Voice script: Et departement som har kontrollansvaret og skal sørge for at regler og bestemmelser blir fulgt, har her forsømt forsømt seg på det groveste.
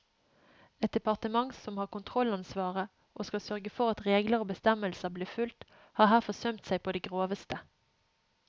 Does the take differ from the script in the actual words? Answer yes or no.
yes